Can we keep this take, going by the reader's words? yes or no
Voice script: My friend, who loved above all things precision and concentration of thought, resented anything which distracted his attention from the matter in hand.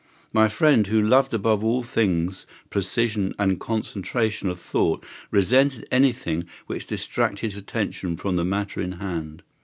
no